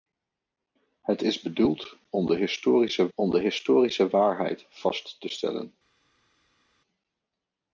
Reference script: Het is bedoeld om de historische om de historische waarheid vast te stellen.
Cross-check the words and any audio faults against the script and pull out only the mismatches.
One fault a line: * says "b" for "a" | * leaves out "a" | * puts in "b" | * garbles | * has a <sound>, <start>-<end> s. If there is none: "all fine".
all fine